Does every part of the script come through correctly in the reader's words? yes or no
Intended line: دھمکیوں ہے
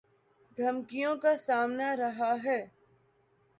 no